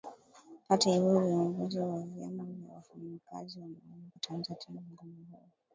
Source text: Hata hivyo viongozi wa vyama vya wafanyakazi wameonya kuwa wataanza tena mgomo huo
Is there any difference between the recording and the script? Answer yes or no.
yes